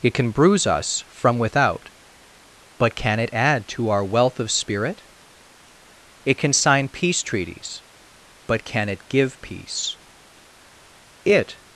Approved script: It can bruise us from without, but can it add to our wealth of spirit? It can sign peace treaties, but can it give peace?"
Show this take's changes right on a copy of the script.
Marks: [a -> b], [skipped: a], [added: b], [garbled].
It can bruise us from without, but can it add to our wealth of spirit? It can sign peace treaties, but can it give peace?" [added: It]